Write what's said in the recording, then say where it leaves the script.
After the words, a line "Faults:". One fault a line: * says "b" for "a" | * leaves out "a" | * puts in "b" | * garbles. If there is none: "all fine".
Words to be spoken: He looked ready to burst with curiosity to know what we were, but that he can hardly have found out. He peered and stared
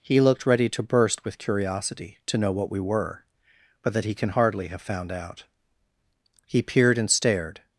He looked ready to burst with curiosity to know what we were, but that he can hardly have found out. He peered and stared
Faults:
all fine